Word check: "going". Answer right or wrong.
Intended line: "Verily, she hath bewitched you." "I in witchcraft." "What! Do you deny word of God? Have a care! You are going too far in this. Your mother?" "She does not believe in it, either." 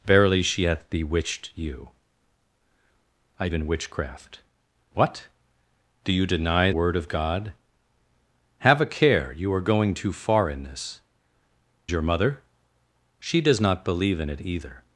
right